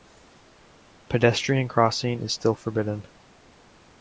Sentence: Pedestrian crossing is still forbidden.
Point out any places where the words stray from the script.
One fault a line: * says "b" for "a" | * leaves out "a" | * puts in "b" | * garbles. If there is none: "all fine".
all fine